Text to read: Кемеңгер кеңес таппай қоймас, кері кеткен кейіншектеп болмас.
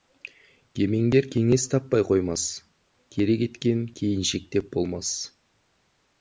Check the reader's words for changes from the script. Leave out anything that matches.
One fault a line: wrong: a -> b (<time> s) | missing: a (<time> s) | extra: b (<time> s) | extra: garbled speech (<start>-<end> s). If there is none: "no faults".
no faults